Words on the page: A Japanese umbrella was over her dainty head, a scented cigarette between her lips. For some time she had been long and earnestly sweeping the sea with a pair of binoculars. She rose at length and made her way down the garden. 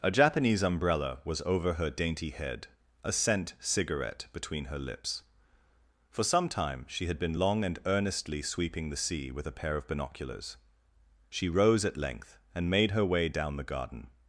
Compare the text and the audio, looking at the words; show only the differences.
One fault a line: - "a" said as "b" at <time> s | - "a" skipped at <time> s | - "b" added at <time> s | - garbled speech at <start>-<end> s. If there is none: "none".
- "scented" said as "scent" at 3.1 s